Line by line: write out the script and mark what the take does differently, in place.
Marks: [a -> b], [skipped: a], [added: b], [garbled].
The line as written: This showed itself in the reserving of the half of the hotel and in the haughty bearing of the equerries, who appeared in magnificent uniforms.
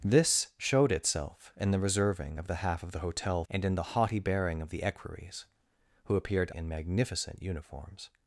This showed itself in the reserving of the half of the hotel and in the haughty bearing of the equerries, who appeared in magnificent uniforms.